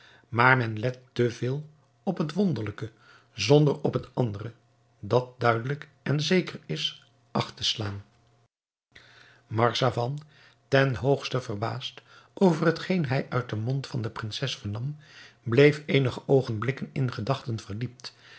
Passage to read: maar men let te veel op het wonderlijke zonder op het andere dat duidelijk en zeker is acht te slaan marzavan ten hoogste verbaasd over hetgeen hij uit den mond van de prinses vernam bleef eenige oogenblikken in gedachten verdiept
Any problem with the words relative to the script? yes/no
no